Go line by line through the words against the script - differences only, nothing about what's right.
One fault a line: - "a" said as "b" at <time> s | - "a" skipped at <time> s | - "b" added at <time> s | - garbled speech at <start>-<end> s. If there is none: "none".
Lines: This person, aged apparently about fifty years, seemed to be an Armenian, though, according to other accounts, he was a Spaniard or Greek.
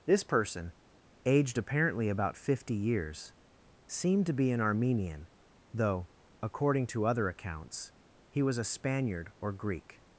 none